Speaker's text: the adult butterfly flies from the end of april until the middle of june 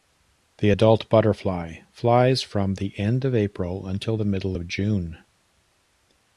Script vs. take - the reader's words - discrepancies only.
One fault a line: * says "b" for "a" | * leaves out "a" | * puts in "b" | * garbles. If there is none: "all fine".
all fine